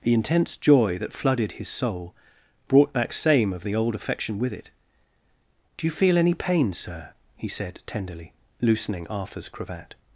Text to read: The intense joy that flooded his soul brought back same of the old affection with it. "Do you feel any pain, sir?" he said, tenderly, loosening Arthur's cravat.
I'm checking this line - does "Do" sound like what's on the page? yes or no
yes